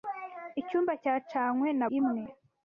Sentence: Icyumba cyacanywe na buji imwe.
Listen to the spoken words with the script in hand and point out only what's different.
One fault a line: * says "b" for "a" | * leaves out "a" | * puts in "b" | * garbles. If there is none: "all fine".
* leaves out "buji"